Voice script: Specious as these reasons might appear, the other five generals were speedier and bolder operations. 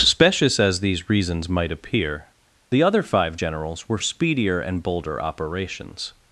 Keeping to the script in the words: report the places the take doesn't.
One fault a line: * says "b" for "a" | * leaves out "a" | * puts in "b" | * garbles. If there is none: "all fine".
all fine